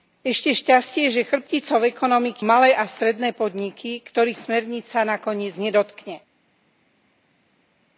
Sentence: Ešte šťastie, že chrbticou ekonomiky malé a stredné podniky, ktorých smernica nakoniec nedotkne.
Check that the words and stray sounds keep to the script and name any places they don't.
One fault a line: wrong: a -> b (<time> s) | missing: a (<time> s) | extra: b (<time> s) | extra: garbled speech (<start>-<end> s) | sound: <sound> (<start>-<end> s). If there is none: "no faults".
no faults